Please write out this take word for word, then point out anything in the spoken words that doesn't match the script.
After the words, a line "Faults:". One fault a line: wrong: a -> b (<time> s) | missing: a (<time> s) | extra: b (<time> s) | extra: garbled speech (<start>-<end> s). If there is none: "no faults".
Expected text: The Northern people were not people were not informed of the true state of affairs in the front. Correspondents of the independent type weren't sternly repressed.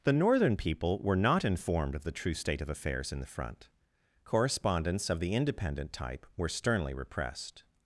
The Northern people were not informed of the true state of affairs in the front. Correspondents of the independent type were sternly repressed.
Faults:
missing: people were not (1.4 s)
wrong: weren't -> were (6.3 s)